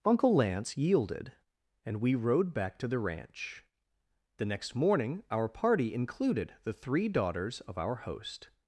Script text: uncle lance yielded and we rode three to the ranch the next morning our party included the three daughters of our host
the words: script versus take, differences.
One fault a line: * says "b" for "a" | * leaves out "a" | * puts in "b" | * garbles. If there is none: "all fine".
* says "back" for "three"